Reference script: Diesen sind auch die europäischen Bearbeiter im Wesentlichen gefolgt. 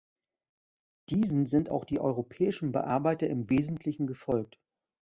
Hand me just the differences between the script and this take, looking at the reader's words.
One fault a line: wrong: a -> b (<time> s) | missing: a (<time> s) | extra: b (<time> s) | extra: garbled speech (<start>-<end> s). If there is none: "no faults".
no faults